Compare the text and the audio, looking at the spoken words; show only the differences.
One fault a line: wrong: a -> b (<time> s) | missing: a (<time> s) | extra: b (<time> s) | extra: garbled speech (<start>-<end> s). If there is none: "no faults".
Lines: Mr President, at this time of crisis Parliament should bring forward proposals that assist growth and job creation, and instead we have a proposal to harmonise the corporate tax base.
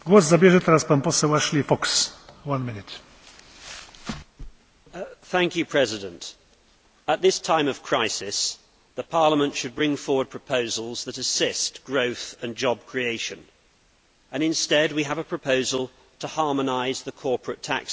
no faults